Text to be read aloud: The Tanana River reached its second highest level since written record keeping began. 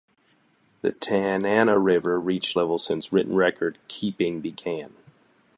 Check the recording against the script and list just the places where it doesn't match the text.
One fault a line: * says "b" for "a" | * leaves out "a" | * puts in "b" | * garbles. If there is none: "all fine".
* leaves out "its second highest"